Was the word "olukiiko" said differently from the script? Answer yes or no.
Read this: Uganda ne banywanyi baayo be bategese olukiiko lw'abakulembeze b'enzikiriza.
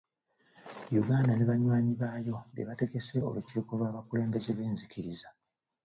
no